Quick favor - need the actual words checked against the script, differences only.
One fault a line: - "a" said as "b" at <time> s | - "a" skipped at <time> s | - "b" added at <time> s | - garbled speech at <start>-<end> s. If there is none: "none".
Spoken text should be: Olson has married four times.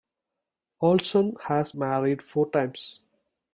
none